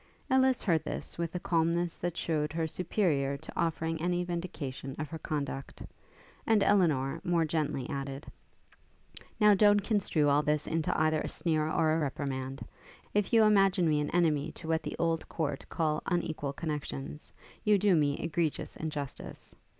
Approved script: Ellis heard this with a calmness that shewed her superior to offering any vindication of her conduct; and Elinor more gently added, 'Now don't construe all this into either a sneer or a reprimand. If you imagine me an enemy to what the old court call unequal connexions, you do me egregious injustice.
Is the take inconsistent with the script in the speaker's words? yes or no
no